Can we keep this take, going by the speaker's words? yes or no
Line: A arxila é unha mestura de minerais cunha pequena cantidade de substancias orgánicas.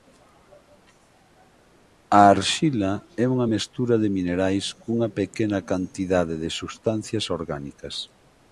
yes